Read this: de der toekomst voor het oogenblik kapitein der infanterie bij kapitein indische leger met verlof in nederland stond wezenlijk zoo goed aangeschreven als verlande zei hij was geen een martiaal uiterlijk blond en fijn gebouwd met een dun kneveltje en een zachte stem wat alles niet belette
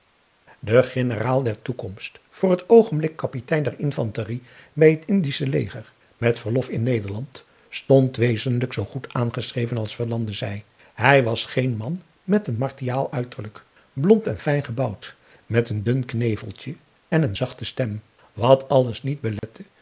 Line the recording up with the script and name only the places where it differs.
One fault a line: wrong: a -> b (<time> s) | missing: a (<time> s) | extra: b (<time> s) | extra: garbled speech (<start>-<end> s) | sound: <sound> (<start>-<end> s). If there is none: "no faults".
extra: generaal (0.8 s)
wrong: kapitein -> het (4.9 s)
extra: man met (11.8 s)
sound: dropout (19.4-19.4 s)